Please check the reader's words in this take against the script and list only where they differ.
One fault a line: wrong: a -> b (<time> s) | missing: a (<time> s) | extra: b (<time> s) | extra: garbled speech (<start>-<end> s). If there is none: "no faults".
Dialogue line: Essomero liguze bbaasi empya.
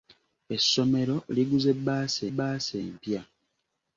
extra: bbaasi (2.3 s)